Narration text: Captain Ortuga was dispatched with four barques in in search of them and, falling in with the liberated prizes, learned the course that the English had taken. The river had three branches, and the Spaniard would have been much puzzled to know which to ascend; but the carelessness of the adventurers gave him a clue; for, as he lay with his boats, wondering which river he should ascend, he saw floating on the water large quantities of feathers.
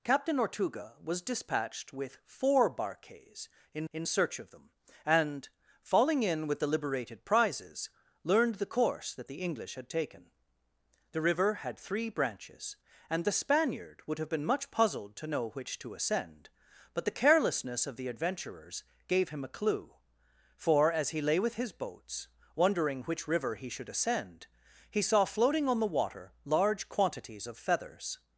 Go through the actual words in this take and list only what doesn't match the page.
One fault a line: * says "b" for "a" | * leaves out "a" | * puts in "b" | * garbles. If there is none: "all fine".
all fine